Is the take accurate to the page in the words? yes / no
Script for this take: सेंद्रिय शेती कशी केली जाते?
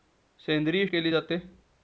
no